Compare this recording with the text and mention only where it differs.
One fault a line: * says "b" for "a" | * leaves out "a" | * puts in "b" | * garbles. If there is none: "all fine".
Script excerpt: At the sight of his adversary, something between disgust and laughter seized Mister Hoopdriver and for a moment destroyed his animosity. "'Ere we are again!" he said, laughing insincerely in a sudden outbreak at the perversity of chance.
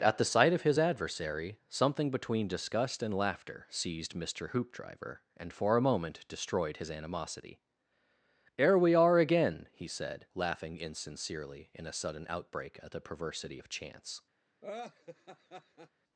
all fine